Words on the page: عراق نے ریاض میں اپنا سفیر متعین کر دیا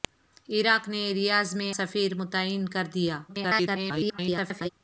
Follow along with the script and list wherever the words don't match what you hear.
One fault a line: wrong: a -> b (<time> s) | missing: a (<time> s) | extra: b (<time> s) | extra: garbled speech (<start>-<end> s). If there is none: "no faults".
missing: اپنا (1.8 s)
extra: garbled speech (3.3-4.7 s)